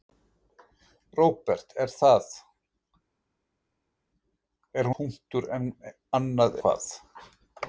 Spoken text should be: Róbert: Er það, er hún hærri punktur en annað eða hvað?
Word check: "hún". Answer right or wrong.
wrong